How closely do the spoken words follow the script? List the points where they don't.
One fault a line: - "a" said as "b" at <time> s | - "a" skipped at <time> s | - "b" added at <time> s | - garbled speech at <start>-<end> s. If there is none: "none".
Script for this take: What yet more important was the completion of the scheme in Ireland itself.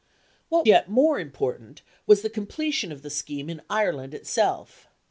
none